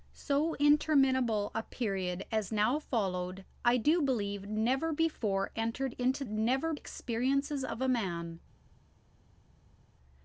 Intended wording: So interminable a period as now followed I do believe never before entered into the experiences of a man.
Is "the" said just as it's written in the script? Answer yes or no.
no